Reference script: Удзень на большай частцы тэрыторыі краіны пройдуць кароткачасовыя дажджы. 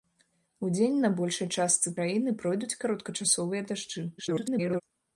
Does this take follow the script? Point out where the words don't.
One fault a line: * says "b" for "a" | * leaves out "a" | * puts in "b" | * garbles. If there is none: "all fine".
* leaves out "тэрыторыі"
* garbles